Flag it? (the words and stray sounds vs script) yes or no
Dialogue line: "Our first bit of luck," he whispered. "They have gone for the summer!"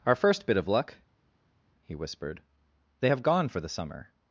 no